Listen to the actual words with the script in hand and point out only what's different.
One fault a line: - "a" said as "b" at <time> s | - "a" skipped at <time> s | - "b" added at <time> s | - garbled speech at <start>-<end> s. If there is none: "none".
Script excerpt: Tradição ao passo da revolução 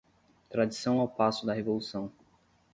none